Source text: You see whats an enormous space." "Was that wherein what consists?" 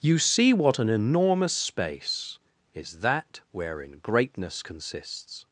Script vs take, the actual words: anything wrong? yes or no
yes